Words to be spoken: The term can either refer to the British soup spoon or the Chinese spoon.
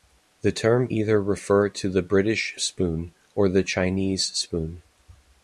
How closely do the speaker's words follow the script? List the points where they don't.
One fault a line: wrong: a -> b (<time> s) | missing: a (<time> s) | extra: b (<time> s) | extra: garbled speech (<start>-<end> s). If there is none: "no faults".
missing: can (0.9 s)
missing: soup (2.6 s)